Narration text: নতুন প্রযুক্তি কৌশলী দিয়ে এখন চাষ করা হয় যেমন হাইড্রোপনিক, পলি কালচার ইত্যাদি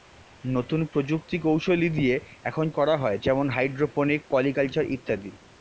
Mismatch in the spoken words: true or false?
true